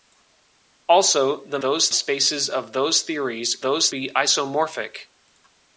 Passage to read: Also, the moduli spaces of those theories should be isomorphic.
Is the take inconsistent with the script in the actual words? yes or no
yes